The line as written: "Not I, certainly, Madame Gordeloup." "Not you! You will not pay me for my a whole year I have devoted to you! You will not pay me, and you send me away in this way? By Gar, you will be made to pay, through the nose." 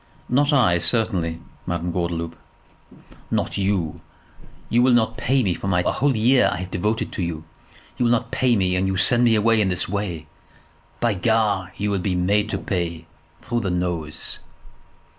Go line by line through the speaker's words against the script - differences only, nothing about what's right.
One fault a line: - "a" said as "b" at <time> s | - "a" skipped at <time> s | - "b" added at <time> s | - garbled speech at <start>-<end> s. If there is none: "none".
none